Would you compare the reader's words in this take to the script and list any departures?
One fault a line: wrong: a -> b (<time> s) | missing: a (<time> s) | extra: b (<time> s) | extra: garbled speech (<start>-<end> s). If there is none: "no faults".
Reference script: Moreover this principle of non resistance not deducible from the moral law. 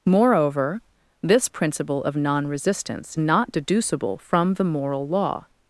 no faults